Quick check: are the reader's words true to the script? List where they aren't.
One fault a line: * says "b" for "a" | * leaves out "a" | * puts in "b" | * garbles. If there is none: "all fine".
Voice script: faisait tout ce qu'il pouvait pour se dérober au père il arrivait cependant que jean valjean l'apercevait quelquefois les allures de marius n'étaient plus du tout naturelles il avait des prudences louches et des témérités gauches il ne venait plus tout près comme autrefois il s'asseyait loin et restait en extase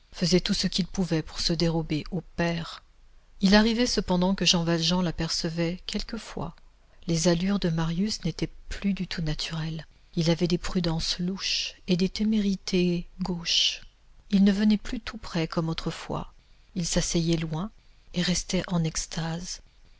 all fine